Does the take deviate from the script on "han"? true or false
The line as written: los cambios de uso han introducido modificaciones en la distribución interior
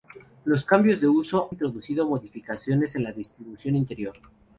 true